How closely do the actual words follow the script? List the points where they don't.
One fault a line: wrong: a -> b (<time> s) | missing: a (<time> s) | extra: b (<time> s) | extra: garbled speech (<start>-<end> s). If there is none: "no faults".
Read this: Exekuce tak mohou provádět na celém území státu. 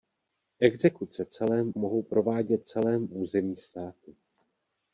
wrong: tak -> celém (1.2 s)
missing: na (2.6 s)